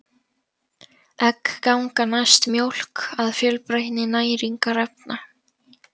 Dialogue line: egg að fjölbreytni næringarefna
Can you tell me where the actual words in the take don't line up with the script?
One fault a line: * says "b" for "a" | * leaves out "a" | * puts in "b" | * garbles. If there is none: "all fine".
* puts in "ganga næst mjólk"